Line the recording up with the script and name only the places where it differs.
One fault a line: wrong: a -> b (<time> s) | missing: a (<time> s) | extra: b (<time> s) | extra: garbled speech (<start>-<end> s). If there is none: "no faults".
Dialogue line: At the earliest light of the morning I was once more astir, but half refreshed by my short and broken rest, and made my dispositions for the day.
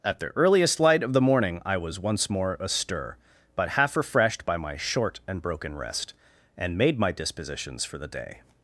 no faults